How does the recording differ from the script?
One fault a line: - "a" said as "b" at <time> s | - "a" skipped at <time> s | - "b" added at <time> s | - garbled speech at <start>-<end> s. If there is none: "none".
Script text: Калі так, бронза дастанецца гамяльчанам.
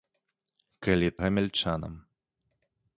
- "так бронза дастанецца" skipped at 1.1 s